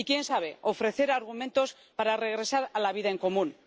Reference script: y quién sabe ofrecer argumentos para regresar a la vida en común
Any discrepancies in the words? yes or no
no